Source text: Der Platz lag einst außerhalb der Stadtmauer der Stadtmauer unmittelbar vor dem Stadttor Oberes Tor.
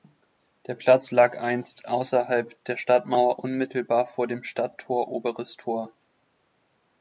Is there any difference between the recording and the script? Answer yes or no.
yes